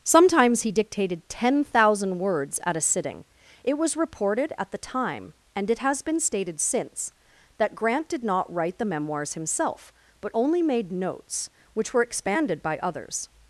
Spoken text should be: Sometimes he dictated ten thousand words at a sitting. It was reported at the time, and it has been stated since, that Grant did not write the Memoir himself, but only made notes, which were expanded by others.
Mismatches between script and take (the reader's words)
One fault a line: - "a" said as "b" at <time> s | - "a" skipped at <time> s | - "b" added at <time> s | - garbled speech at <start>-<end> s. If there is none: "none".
- "Memoir" said as "Memoirs" at 8.8 s